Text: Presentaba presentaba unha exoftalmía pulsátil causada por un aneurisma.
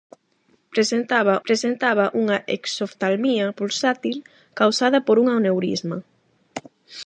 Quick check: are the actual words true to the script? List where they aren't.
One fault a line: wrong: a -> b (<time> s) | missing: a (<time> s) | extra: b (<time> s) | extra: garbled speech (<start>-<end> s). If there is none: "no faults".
no faults